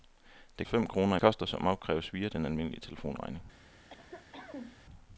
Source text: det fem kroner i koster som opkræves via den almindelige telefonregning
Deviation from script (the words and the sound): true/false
true